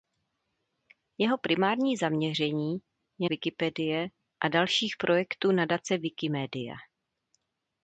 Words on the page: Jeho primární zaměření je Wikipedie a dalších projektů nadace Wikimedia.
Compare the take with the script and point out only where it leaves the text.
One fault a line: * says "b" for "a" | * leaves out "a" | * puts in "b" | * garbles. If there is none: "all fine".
all fine